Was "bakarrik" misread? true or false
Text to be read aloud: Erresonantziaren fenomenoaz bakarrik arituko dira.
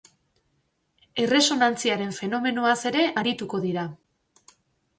true